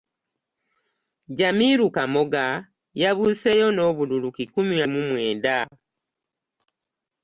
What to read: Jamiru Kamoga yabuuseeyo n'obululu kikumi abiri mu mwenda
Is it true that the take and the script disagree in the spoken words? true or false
true